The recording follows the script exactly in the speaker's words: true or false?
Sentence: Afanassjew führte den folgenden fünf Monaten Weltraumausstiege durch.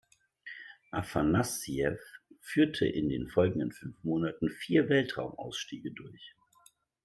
false